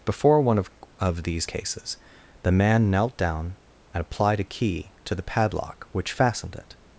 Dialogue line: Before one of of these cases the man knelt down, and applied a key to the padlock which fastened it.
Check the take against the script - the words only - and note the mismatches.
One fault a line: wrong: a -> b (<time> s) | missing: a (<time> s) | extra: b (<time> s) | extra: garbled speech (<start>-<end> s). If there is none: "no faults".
no faults